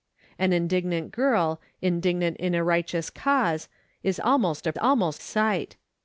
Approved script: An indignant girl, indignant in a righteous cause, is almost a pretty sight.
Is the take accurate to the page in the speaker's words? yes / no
no